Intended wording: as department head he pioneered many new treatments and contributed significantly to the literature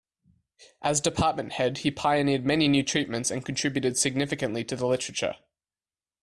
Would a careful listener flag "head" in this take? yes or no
no